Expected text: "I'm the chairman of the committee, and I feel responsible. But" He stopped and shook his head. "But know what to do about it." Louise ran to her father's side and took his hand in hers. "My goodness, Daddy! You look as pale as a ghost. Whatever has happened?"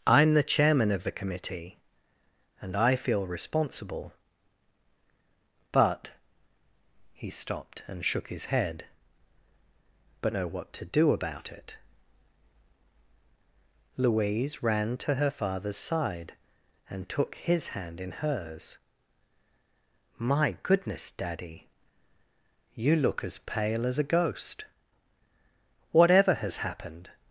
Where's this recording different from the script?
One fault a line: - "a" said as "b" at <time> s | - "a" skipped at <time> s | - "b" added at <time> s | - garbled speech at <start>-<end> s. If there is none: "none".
none